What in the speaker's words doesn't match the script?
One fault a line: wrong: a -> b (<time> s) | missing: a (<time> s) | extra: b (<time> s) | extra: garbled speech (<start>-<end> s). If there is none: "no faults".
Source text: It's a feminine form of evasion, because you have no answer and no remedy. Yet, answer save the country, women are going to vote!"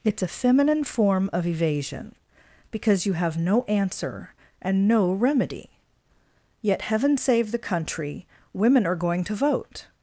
wrong: answer -> heaven (6.8 s)